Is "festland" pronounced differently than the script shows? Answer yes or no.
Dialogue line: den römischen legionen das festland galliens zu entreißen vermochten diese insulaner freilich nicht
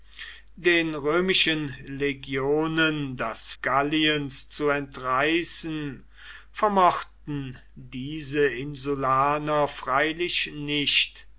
yes